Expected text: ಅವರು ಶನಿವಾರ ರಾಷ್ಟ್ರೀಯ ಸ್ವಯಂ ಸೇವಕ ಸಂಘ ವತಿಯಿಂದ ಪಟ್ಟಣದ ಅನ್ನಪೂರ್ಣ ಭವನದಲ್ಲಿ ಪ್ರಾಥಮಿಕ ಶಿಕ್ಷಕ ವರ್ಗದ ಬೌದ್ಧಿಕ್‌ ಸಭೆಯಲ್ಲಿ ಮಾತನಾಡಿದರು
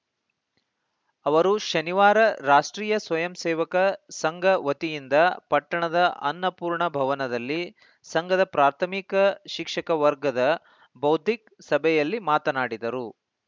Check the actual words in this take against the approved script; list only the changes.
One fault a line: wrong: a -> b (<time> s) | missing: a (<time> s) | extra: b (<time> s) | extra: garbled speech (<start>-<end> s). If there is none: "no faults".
extra: ಸಂಘದ (8.0 s)